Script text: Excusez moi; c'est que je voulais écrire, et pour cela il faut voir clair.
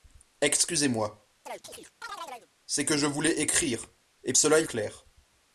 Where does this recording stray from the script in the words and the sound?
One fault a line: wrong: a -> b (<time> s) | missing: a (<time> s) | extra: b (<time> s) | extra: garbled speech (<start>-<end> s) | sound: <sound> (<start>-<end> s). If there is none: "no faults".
sound: chirp (1.5-2.5 s)
missing: pour (4.3 s)
missing: faut voir (4.7 s)